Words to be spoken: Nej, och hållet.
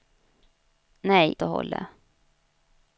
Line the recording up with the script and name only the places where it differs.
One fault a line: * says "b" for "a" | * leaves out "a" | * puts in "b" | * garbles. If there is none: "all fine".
all fine